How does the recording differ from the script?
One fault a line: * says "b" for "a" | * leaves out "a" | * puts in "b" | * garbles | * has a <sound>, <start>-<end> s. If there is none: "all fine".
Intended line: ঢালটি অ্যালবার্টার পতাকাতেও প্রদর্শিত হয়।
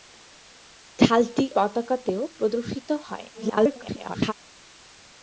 * leaves out "অ্যালবার্টার"
* garbles